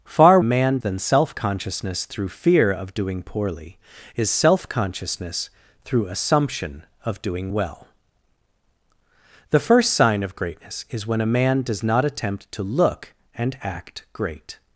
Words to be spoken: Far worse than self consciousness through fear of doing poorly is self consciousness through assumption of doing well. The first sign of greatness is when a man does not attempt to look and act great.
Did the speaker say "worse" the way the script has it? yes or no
no